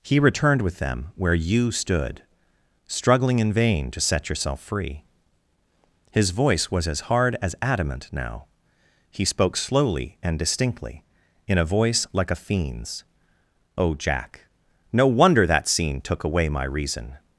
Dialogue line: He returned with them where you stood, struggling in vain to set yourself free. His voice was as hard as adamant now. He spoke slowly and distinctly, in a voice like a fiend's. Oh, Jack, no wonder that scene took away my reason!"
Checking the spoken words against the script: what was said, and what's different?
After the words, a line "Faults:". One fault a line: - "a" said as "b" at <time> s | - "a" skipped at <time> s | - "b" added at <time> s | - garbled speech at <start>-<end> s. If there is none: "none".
He returned with them where you stood, struggling in vain to set yourself free. His voice was as hard as adamant now. He spoke slowly and distinctly, in a voice like a fiend's. Oh, Jack, no wonder that scene took away my reason!"
Faults:
none